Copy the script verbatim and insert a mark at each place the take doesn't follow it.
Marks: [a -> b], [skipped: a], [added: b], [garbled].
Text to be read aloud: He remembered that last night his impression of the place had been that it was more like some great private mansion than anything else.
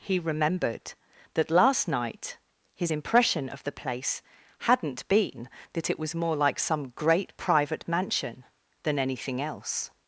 He remembered that last night his impression of the place [had -> hadn't] been that it was more like some great private mansion than anything else.